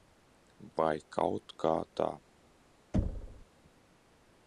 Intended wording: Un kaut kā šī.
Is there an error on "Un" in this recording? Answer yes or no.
yes